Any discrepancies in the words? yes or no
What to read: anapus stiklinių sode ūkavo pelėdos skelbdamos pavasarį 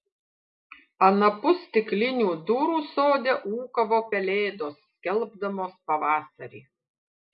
yes